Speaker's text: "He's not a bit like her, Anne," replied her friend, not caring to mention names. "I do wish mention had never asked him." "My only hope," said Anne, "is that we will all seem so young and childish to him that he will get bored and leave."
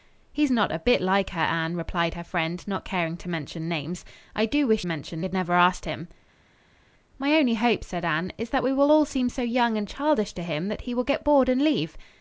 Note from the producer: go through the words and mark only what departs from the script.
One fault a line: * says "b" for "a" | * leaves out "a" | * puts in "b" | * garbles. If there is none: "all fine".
all fine